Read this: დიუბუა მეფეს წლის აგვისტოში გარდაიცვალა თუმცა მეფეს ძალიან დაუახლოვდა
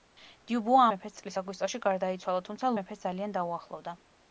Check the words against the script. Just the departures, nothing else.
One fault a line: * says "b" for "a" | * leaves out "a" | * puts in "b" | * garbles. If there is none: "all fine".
all fine